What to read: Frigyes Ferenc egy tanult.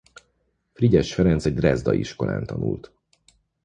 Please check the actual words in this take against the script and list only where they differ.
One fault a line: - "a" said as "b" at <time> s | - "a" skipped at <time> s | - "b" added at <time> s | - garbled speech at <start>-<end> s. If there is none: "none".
- "drezdai iskolán" added at 1.5 s